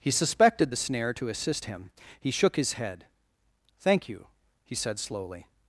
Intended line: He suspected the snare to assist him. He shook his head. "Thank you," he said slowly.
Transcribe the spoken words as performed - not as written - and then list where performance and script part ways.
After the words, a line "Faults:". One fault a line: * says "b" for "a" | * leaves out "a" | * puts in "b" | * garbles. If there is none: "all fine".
He suspected the snare to assist him. He shook his head. "Thank you," he said slowly.
Faults:
all fine